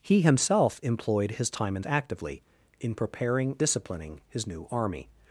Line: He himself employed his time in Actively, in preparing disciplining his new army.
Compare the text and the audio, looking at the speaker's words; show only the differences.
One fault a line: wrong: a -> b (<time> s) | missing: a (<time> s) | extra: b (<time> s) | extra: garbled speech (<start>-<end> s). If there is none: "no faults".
no faults